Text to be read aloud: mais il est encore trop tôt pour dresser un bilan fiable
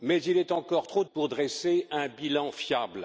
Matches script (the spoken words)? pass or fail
fail